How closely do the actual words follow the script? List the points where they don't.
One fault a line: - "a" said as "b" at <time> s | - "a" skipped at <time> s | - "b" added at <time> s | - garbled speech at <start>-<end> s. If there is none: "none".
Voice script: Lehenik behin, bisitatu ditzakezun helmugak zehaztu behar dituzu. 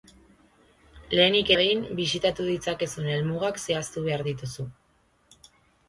none